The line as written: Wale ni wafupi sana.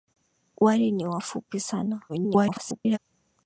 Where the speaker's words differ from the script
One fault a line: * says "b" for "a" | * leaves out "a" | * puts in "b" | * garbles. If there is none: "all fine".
* garbles